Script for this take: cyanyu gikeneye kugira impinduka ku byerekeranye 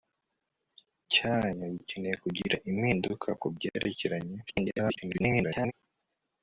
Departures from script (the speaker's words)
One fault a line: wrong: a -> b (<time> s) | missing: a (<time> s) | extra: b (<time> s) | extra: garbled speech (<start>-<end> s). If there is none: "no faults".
extra: garbled speech (4.5-5.7 s)